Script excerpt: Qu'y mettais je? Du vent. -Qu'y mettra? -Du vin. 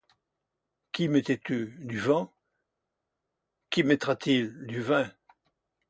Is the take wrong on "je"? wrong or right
wrong